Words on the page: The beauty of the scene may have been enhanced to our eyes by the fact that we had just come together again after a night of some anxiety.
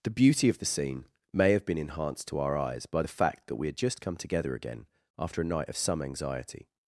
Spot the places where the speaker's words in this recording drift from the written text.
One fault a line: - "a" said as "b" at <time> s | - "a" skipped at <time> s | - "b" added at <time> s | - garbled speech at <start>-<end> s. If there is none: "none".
none